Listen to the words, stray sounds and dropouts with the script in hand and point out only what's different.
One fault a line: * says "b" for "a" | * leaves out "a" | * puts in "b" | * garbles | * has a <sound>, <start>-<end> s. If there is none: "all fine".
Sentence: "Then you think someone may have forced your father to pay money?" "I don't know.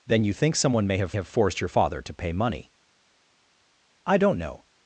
* puts in "have"